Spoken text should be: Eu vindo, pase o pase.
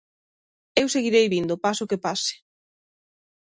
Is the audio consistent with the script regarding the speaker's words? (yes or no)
no